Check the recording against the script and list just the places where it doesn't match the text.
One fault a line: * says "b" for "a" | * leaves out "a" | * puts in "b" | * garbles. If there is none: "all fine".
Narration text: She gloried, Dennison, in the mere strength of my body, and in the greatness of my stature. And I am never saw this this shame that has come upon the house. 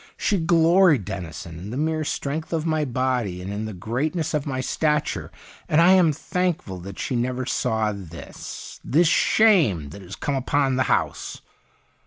* puts in "thankful that she"